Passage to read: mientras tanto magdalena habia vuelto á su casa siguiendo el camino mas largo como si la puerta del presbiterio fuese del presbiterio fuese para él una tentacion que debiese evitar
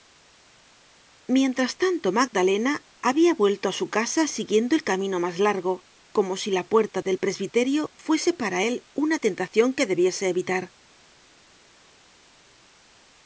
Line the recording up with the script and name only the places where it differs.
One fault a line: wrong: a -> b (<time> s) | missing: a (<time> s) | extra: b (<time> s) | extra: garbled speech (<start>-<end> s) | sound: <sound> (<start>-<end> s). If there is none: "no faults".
missing: del presbiterio fuese (8.3 s)